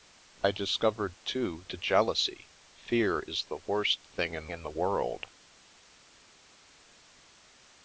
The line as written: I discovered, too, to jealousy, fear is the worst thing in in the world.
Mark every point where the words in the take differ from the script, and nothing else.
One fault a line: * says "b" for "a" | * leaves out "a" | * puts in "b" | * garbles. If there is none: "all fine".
all fine